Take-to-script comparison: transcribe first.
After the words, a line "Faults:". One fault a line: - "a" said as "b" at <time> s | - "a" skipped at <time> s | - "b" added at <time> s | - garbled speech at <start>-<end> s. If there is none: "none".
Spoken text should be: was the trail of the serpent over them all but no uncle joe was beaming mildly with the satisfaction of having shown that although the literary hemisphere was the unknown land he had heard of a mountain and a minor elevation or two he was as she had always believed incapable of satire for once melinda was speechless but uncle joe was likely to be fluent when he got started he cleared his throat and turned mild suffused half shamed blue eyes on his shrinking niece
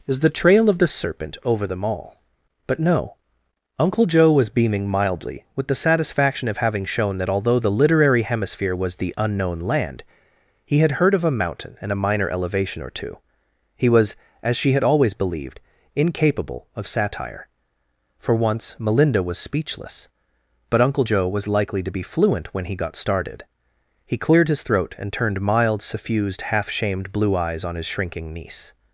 is the trail of the serpent over them all but no uncle joe was beaming mildly with the satisfaction of having shown that although the literary hemisphere was the unknown land he had heard of a mountain and a minor elevation or two he was as she had always believed incapable of satire for once melinda was speechless but uncle joe was likely to be fluent when he got started he cleared his throat and turned mild suffused half shamed blue eyes on his shrinking niece
Faults:
- "was" said as "is" at 0.1 s